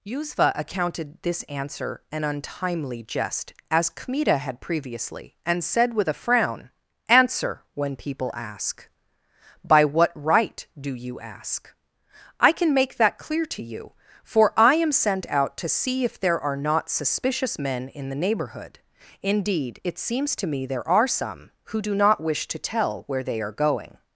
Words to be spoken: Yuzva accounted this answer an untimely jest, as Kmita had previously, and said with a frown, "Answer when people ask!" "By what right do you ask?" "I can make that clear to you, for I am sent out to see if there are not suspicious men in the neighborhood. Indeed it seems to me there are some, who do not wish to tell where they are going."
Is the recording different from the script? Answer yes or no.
no